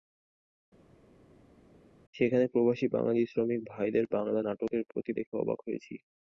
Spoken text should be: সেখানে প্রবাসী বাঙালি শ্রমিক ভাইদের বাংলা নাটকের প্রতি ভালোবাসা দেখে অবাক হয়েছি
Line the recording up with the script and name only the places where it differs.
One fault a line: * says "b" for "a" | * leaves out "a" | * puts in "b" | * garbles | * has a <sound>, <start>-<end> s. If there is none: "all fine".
* leaves out "ভালোবাসা"